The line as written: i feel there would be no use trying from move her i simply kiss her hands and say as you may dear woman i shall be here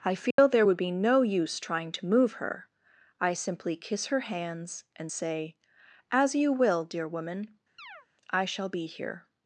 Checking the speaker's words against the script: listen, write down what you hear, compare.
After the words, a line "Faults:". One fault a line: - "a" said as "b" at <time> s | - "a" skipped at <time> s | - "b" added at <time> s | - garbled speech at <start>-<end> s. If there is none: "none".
i feel there would be no use trying to move her i simply kiss her hands and say as you will dear woman i shall be here
Faults:
- "from" said as "to" at 1.9 s
- "may" said as "will" at 6.5 s